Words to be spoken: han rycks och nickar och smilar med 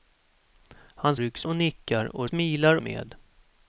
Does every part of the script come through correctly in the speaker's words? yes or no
yes